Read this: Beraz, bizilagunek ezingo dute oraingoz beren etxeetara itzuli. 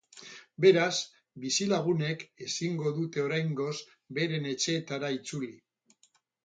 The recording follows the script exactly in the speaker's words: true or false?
true